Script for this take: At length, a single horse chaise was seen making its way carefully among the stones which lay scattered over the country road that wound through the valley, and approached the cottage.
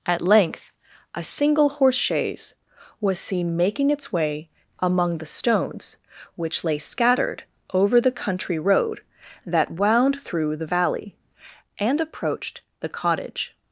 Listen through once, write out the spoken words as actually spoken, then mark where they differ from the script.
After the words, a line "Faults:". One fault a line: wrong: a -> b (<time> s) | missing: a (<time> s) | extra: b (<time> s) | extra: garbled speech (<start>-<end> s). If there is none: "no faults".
At length, a single horse chaise was seen making its way among the stones which lay scattered over the country road that wound through the valley, and approached the cottage.
Faults:
missing: carefully (4.5 s)